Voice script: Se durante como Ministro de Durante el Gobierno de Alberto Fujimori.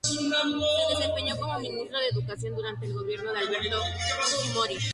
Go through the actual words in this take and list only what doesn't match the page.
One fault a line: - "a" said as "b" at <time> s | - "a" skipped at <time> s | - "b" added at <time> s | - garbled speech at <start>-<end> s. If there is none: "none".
- "durante" said as "desempeñó" at 0.9 s
- "Educación" added at 2.1 s